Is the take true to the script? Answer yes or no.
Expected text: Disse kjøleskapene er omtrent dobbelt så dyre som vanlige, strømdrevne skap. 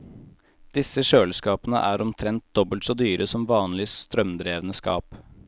yes